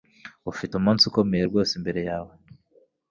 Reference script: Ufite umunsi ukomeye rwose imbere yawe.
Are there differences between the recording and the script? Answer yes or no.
no